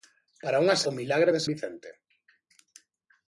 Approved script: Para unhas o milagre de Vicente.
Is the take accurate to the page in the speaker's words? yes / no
yes